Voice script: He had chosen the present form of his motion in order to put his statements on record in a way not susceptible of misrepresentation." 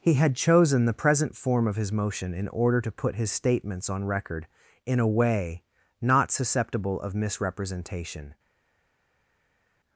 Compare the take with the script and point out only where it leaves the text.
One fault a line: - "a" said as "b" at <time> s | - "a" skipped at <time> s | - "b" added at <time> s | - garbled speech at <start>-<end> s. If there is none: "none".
none